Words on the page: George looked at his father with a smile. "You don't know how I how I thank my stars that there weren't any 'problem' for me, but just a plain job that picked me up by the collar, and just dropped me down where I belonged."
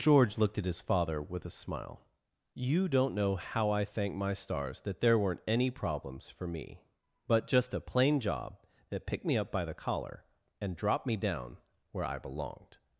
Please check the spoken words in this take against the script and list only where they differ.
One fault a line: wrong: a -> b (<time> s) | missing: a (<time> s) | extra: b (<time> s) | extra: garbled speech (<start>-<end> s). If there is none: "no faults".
missing: how I (3.9 s)
wrong: problem -> problems (5.7 s)
missing: just (10.8 s)